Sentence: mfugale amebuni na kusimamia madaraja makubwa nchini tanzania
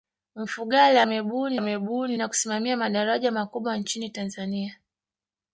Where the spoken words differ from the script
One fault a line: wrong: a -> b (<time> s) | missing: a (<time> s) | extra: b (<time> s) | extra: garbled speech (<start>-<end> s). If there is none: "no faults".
extra: amebuni (1.5 s)